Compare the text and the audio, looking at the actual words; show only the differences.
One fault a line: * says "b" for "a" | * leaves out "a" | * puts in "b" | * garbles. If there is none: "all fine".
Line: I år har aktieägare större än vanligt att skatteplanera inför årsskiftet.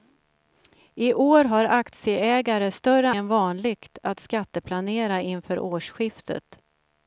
all fine